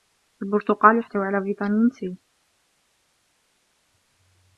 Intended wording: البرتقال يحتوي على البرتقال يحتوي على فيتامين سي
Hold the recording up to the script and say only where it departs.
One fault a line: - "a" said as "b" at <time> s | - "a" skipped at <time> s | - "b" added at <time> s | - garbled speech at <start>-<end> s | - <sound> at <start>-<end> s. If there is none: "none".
- "البرتقال يحتوي على" skipped at 1.4 s